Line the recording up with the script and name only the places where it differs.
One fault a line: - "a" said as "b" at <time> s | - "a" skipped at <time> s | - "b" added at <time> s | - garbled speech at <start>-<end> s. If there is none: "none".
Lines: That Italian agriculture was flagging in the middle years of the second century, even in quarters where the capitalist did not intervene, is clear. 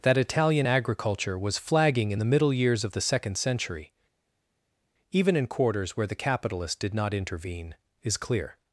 none